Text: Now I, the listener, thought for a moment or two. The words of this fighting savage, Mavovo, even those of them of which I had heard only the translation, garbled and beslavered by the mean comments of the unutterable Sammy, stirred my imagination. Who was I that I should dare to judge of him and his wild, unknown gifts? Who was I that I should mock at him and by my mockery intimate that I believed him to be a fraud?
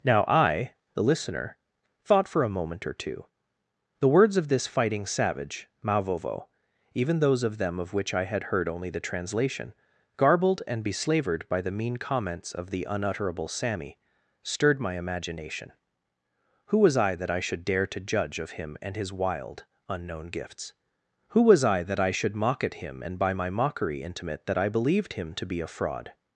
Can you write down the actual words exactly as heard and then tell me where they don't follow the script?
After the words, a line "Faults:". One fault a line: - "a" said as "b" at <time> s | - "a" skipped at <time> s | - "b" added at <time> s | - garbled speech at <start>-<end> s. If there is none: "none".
Now I, the listener, thought for a moment or two. The words of this fighting savage, Mavovo, even those of them of which I had heard only the translation, garbled and beslavered by the mean comments of the unutterable Sammy, stirred my imagination. Who was I that I should dare to judge of him and his wild, unknown gifts? Who was I that I should mock at him and by my mockery intimate that I believed him to be a fraud?
Faults:
none